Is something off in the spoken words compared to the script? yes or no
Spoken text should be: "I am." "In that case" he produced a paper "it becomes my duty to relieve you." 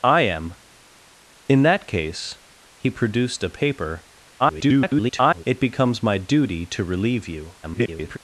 yes